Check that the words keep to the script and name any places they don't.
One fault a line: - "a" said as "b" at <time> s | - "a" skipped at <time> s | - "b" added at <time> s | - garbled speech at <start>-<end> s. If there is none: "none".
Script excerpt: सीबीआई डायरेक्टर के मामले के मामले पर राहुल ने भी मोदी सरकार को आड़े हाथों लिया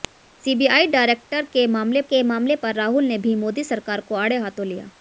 none